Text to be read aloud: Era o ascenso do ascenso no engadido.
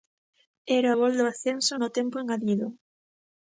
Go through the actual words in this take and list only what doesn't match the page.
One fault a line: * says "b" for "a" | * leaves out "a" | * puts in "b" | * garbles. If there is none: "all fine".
* says "gol" for "ascenso"
* puts in "tempo"